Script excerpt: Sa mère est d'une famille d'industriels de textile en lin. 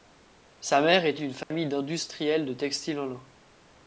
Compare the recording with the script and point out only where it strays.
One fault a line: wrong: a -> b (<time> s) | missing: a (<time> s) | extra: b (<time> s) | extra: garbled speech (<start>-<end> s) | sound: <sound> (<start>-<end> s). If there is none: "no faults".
sound: dropout (1.4-1.5 s)